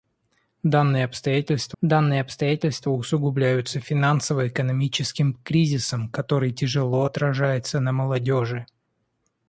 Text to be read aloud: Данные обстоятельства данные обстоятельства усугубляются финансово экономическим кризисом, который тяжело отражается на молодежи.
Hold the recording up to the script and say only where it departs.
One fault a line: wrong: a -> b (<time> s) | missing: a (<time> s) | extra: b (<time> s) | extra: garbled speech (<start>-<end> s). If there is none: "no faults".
no faults